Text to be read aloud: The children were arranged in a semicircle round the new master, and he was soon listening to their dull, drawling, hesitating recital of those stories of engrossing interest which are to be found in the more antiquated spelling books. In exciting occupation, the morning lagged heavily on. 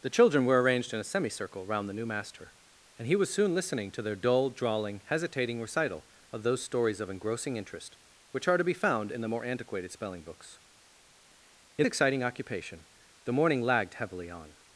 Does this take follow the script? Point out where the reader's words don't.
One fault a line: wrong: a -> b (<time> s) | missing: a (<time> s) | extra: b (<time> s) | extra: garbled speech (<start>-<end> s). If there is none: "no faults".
no faults